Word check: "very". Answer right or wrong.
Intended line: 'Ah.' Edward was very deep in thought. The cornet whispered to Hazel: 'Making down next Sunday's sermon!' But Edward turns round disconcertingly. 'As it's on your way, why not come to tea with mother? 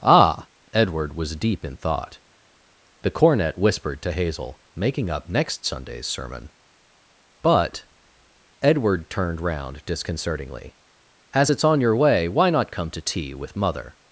wrong